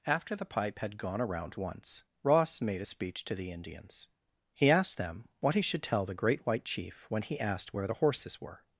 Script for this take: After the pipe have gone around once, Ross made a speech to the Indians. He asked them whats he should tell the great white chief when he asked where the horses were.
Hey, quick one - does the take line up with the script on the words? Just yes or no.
no